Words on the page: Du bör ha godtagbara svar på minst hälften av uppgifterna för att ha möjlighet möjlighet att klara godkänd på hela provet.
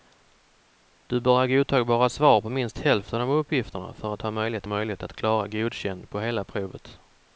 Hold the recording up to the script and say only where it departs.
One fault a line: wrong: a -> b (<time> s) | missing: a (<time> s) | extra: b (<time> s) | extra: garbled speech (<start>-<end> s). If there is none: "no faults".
no faults